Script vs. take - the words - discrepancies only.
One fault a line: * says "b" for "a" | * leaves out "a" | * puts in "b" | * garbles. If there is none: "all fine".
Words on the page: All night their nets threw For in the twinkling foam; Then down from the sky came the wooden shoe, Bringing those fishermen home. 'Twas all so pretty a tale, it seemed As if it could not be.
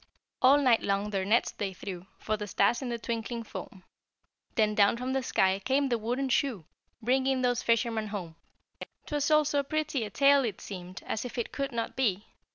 * puts in "long"
* puts in "they"
* puts in "the stars"